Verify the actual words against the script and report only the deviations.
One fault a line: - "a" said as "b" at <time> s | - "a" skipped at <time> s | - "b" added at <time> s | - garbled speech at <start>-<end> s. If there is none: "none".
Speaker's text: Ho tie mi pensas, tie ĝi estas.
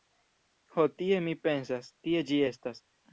none